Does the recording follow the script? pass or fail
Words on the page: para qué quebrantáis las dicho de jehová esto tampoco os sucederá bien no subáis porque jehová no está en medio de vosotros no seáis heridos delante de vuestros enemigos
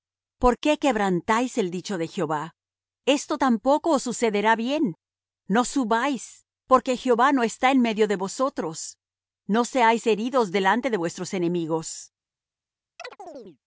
fail